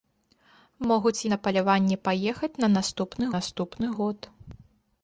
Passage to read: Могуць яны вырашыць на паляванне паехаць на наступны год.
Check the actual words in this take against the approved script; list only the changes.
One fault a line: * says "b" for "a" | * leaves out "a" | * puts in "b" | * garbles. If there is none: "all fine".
* leaves out "яны вырашыць"
* puts in "наступны"